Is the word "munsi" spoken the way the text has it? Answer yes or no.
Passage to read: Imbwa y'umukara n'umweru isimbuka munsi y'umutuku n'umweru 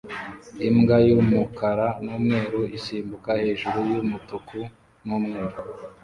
no